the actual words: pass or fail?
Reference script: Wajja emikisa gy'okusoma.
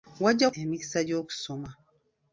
pass